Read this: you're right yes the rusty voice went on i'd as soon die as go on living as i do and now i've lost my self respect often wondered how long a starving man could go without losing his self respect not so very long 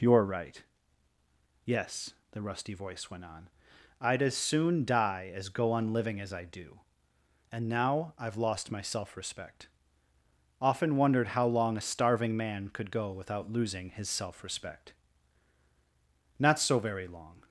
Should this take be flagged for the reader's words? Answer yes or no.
no